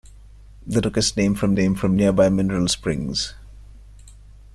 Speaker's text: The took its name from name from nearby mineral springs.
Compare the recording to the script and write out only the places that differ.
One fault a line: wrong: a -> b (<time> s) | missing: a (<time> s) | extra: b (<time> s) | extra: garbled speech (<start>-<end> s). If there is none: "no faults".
no faults